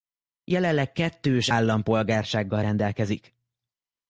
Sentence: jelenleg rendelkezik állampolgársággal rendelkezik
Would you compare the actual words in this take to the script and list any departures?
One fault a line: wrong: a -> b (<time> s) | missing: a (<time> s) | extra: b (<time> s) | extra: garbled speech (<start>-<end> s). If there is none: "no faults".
wrong: rendelkezik -> kettős (0.9 s)